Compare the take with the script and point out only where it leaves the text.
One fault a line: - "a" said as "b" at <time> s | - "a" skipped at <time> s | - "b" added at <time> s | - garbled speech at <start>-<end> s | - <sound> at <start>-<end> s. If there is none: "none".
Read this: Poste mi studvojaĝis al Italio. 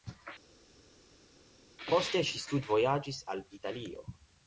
- "mi" said as "ŝi" at 2.3 s